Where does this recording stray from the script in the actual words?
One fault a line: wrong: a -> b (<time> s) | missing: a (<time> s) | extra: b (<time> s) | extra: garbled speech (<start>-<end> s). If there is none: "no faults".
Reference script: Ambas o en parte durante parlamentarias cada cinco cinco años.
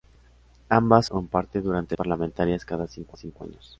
no faults